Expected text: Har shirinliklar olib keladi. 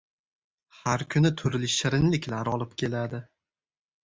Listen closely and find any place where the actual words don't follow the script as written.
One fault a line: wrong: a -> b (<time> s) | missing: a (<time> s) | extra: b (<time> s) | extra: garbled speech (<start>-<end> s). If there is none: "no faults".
extra: kuni turli (1.1 s)